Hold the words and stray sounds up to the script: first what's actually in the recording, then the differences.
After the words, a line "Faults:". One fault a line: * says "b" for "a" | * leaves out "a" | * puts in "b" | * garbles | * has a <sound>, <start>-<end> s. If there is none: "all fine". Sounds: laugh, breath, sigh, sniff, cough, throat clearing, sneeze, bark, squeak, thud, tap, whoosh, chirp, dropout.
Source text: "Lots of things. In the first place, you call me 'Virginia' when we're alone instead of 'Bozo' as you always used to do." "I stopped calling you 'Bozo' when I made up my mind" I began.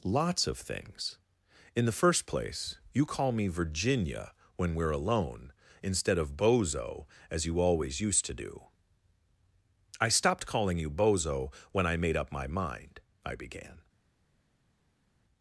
"Lots of things. In the first place, you call me 'Virginia' when we're alone instead of 'Bozo' as you always used to do." "I stopped calling you 'Bozo' when I made up my mind" I began.
Faults:
all fine